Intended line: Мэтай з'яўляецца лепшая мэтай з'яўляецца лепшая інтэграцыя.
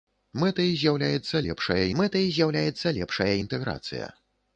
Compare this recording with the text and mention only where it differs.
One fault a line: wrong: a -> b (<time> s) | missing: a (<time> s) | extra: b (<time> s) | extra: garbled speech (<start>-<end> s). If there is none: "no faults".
no faults